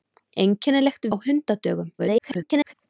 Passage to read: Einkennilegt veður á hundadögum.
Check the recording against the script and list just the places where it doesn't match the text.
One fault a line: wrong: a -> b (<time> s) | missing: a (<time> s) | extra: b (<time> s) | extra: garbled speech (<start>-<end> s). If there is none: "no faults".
missing: veður (1.1 s)
extra: garbled speech (2.0-2.7 s)